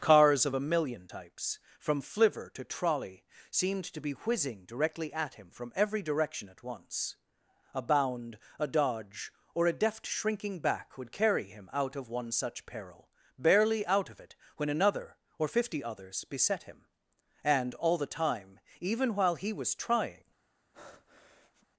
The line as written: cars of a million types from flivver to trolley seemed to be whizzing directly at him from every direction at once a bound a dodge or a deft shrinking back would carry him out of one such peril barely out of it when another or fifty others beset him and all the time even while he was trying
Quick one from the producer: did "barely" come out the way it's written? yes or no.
yes